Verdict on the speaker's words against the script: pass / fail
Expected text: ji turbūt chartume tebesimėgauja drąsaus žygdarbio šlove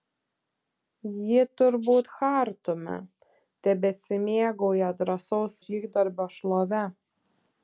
pass